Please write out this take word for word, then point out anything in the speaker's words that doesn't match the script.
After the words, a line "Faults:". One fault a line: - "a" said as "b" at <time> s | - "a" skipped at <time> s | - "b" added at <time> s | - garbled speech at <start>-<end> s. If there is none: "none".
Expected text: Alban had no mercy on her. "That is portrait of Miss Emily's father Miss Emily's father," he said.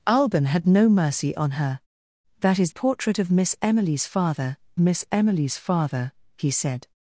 Alban had no mercy on her. "That is portrait of Miss Emily's father Miss Emily's father," he said.
Faults:
none